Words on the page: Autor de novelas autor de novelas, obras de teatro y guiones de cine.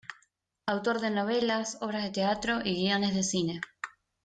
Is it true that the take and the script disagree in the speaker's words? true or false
true